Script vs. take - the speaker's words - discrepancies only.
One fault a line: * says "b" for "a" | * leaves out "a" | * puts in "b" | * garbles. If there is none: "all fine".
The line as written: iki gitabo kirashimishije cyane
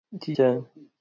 * leaves out "gitabo kirashimishije"